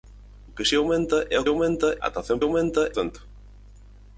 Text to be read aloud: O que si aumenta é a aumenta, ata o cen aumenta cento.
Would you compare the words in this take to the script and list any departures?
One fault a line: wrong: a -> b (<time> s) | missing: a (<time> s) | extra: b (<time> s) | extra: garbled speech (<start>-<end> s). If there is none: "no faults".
no faults